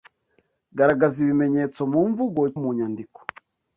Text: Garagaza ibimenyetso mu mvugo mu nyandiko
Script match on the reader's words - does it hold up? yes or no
yes